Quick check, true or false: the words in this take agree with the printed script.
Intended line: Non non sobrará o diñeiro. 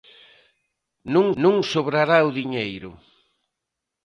true